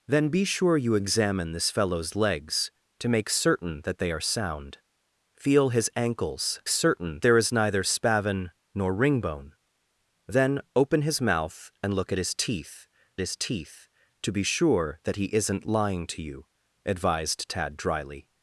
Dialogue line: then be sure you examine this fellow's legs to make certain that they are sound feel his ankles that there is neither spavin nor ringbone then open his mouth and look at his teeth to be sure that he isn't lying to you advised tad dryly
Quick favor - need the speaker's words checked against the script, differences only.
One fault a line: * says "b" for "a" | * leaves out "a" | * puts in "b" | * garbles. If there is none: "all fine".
* says "certain" for "that"
* puts in "his teeth"